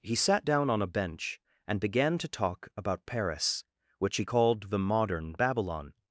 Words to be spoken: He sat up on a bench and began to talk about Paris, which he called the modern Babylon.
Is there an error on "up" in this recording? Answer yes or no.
yes